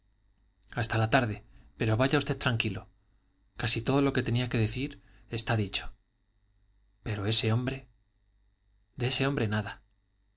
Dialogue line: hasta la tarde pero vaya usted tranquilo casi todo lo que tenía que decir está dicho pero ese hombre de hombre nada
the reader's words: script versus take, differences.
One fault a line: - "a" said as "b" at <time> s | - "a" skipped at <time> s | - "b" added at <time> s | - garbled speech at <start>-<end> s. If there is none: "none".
- "ese" added at 9.1 s